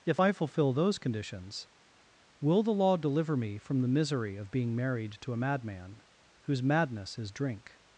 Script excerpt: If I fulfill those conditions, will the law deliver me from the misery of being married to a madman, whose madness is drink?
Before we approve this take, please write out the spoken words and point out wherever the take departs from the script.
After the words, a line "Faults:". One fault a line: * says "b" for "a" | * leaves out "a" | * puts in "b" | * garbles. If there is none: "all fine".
If I fulfill those conditions, will the law deliver me from the misery of being married to a madman, whose madness is drink?
Faults:
all fine